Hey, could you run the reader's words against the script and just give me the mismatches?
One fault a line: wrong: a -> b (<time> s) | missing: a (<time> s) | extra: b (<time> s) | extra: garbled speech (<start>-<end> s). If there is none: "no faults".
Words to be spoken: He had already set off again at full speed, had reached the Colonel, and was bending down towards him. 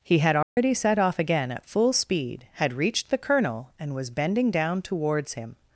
no faults